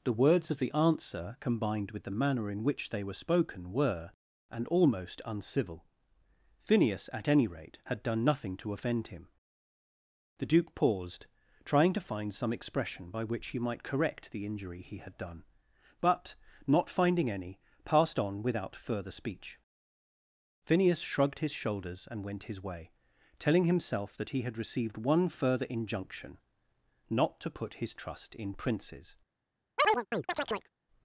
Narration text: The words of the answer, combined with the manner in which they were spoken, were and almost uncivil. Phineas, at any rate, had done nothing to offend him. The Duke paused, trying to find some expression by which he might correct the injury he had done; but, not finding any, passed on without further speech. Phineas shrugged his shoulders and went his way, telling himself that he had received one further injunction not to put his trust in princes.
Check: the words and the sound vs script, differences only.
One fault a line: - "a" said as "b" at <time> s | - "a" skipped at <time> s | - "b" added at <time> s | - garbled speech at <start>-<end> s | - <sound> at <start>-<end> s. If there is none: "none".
- chirp at 29.8-30.7 s